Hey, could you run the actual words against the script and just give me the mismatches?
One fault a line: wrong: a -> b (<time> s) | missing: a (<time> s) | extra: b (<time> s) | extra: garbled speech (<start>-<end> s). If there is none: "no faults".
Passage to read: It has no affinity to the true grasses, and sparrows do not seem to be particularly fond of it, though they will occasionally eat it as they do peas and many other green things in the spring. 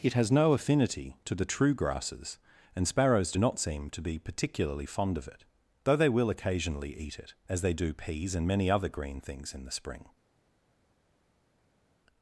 no faults